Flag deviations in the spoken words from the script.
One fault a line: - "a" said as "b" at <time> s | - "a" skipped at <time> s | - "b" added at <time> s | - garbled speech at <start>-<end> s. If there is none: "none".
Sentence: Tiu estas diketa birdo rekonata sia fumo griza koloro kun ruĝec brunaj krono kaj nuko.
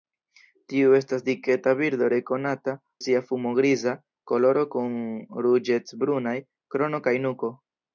none